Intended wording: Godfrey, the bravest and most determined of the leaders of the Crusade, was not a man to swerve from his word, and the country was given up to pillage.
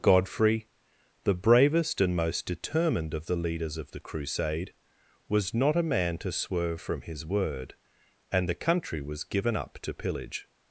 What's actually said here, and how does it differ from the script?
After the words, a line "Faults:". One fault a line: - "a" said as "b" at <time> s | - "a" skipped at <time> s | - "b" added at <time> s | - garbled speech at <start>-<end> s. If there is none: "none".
Godfrey, the bravest and most determined of the leaders of the Crusade, was not a man to swerve from his word, and the country was given up to pillage.
Faults:
none